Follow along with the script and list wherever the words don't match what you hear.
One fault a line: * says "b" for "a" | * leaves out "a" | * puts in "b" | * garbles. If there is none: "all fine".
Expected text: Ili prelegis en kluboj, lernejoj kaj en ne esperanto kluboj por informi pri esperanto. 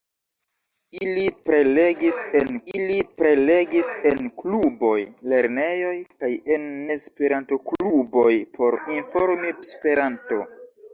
* puts in "ili prelegis en"
* leaves out "ne"
* leaves out "pri"